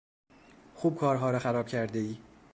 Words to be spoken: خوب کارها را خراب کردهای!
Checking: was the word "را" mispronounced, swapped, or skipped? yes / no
no